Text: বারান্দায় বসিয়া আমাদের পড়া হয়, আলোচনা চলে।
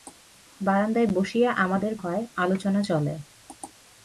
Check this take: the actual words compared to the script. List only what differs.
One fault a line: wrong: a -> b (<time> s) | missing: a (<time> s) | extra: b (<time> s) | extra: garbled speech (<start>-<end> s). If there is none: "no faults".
missing: পড়া (1.9 s)